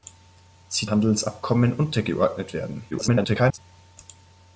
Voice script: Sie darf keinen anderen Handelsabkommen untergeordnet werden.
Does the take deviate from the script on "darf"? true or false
true